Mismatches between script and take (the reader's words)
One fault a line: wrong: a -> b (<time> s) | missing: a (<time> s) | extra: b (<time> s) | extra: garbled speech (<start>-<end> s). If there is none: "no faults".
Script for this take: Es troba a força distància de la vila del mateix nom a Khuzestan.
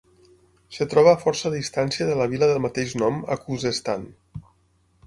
no faults